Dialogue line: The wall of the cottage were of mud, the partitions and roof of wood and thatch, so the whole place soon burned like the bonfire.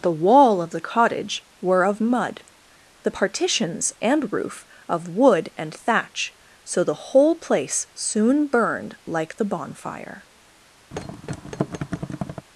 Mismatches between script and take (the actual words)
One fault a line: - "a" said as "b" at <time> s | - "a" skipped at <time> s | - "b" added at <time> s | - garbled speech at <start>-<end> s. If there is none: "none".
none